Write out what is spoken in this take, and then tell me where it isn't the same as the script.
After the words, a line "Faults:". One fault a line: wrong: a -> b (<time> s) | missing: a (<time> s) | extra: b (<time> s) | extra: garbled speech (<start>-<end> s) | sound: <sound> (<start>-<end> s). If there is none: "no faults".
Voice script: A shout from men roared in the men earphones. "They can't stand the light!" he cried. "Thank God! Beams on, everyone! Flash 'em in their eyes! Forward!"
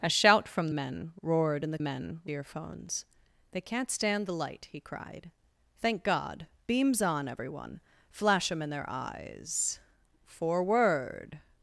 A shout from men roared in the men earphones. "They can't stand the light!" he cried. "Thank God! Beams on, everyone! Flash 'em in their eyes! Forward!"
Faults:
no faults